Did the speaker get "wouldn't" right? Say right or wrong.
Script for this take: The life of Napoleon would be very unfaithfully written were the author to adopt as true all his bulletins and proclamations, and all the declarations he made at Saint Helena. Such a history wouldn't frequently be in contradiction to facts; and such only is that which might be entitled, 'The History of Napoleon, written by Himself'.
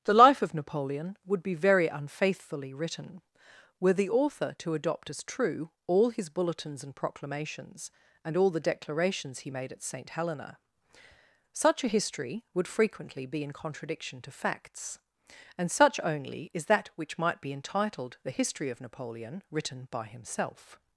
wrong